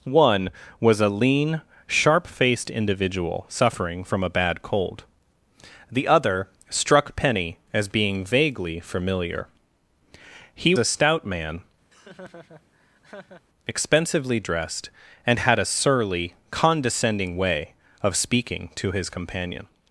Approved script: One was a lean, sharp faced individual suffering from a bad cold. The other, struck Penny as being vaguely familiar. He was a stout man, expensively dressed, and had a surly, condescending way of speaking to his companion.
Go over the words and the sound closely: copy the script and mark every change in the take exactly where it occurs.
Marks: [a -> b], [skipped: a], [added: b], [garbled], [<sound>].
One was a lean, sharp faced individual suffering from a bad cold. The other, struck Penny as being vaguely familiar. He [skipped: was] a stout man, [laugh] expensively dressed, and had a surly, condescending way of speaking to his companion.